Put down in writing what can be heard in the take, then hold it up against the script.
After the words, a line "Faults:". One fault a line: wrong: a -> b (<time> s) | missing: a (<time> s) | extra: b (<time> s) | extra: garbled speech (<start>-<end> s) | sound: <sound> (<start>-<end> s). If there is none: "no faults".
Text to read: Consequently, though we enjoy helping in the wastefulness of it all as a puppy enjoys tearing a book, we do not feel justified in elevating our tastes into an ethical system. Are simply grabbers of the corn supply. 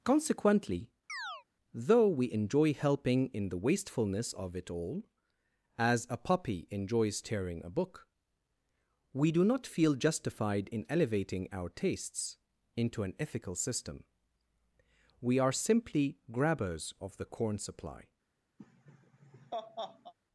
Consequently, though we enjoy helping in the wastefulness of it all as a puppy enjoys tearing a book, we do not feel justified in elevating our tastes into an ethical system. We are simply grabbers of the corn supply.
Faults:
sound: chirp (1.1-1.4 s)
extra: We (15.2 s)
sound: laugh (18.6-20.1 s)